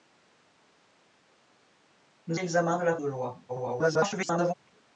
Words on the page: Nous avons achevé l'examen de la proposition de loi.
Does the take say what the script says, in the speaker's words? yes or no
no